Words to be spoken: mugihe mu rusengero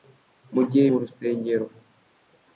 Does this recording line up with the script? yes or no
yes